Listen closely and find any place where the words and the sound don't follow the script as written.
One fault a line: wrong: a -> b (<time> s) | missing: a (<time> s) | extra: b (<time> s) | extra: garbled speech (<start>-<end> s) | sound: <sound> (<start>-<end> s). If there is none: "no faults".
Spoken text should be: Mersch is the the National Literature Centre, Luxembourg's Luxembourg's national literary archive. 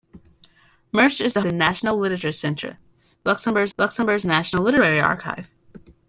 no faults